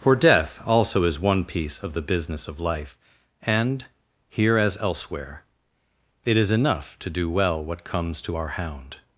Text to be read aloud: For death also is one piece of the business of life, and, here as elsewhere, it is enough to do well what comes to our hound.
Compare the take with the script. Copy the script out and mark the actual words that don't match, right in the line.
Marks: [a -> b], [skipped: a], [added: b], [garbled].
For death also is one piece of the business of life, and, here as elsewhere, it is enough to do well what comes to our hound.